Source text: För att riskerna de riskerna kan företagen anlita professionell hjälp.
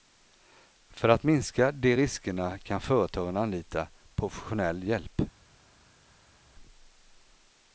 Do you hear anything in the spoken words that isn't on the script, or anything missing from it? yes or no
yes